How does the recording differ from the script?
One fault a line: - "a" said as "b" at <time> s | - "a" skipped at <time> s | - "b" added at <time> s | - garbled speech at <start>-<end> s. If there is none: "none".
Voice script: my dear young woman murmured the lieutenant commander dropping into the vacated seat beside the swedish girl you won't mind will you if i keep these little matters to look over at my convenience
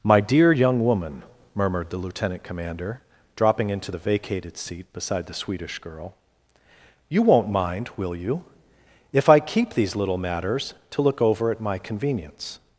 none